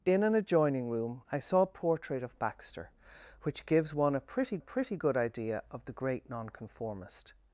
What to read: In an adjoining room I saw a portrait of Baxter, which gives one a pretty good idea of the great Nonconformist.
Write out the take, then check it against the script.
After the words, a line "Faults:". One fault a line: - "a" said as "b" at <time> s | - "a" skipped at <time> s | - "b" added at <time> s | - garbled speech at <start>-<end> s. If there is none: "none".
In an adjoining room I saw a portrait of Baxter, which gives one a pretty pretty good idea of the great Nonconformist.
Faults:
- "pretty" added at 4.6 s